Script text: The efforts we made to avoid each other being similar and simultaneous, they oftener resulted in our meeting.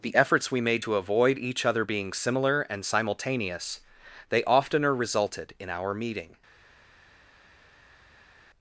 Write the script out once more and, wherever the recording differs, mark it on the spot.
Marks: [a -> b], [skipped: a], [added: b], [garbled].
The efforts we made to avoid each other being similar and simultaneous, they oftener resulted in our meeting.